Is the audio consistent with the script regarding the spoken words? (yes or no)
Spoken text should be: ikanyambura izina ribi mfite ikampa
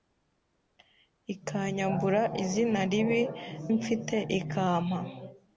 yes